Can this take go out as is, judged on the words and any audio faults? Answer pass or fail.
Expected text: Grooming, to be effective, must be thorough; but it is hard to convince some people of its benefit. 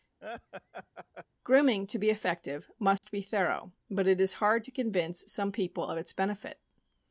fail